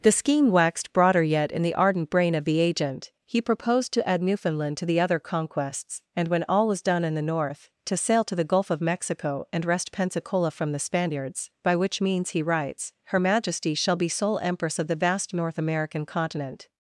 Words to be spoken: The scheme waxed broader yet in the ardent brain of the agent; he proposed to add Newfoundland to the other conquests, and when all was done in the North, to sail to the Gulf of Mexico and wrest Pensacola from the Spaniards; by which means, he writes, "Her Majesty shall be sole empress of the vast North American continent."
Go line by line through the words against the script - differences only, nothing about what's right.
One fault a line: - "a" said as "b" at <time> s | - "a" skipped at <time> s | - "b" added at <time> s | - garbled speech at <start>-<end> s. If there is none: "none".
none